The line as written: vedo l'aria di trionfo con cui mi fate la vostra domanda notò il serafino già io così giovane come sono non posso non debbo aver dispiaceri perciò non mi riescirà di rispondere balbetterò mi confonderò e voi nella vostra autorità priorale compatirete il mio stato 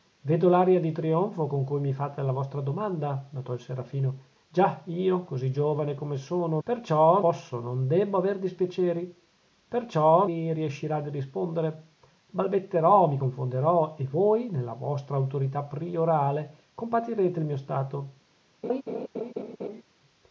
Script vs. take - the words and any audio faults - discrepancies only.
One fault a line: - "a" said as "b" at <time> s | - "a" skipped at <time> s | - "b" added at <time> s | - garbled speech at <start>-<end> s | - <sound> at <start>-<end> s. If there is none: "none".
- "non" said as "perciò" at 6.6 s
- "non" skipped at 10.3 s
- laugh at 18.6-19.8 s